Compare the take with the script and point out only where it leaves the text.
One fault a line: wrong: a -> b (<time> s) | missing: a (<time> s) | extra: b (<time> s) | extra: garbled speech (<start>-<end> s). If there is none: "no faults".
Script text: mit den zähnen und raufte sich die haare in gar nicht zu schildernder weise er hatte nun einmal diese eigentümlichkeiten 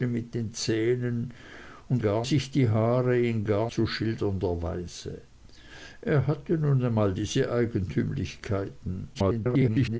wrong: raufte -> gar (2.0 s)
missing: nicht (3.7 s)
extra: garbled speech (9.1-10.0 s)